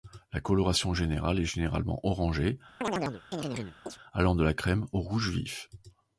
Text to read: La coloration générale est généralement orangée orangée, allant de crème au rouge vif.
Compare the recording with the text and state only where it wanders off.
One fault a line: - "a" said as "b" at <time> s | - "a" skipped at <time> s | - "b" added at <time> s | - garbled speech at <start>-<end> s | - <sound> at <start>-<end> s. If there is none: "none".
- "orangée" skipped at 2.6 s
- chirp at 2.8-4.0 s
- "la" added at 4.4 s